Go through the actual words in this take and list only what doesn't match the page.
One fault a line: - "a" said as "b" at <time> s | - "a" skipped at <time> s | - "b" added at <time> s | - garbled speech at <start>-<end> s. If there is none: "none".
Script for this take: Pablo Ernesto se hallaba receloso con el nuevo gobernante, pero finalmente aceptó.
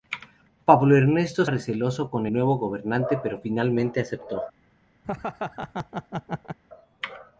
- "se hallaba" skipped at 1.4 s
- "el" skipped at 2.3 s